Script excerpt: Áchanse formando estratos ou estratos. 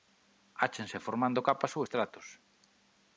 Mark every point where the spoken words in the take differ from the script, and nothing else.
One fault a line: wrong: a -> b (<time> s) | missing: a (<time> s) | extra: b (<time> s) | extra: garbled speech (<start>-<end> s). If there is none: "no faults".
wrong: estratos -> capas (1.5 s)